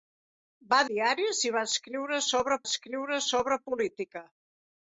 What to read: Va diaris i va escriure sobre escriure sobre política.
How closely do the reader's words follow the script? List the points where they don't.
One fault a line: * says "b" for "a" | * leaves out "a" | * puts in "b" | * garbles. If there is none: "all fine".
all fine